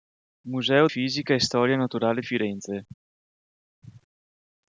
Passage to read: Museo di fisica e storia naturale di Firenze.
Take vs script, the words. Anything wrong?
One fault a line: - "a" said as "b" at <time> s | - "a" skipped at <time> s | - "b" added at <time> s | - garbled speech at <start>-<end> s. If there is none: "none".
- "di" skipped at 0.9 s
- "di" skipped at 2.2 s